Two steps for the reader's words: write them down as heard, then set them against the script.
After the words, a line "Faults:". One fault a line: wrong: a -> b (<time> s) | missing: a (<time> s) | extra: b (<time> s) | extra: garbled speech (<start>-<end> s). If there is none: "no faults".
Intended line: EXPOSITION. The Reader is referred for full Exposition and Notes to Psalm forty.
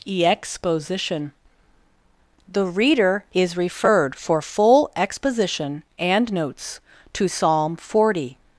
EXPOSITION. The Reader is referred for full Exposition and Notes to Psalm forty.
Faults:
no faults